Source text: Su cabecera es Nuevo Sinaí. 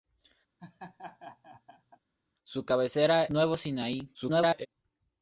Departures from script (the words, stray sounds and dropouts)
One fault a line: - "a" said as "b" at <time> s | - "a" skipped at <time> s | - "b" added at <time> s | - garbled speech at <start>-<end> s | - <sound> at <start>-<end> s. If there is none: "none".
- laugh at 0.6-2.0 s
- "es" skipped at 3.3 s
- garbled speech at 4.1-4.7 s